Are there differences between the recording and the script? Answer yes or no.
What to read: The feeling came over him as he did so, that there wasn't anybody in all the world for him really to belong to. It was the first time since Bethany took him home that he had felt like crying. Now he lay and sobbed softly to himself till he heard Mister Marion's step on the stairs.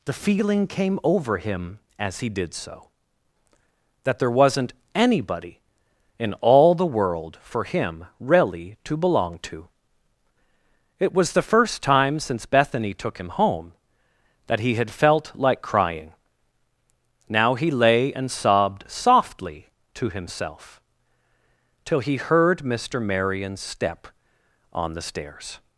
no